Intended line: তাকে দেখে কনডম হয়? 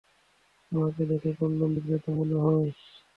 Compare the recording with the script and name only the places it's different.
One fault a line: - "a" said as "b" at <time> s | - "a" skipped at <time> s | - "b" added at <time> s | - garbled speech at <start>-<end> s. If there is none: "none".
- "তাকে" said as "আমাকে" at 0.7 s
- "বিক্রেতা মনে" added at 1.7 s